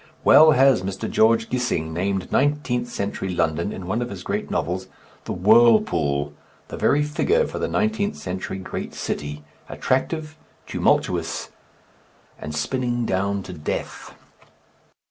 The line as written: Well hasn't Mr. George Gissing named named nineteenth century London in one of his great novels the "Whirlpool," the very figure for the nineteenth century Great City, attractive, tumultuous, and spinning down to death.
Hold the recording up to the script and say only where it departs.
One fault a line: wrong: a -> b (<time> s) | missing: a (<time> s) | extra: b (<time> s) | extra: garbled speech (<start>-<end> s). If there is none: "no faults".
wrong: hasn't -> has (0.5 s)
missing: named (2.3 s)